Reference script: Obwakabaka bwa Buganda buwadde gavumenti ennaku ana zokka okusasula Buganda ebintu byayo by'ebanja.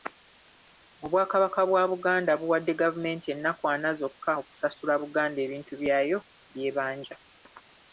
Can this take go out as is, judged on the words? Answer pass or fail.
pass